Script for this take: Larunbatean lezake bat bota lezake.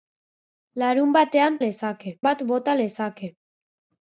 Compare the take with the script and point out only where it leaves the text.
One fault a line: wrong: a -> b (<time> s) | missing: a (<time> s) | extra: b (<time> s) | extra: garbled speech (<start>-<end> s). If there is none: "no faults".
no faults